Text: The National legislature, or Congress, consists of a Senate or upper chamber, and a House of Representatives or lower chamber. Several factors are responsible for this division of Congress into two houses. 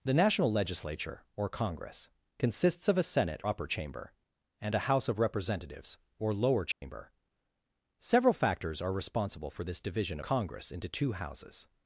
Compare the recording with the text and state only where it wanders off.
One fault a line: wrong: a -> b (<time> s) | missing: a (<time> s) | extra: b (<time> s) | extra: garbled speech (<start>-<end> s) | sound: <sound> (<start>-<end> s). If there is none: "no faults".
missing: or (3.4 s)
sound: dropout (6.7-6.8 s)
missing: of (10.2 s)